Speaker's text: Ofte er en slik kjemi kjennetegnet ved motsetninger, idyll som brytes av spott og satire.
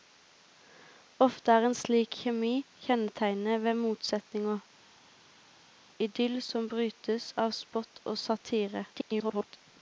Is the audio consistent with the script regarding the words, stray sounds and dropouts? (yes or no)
no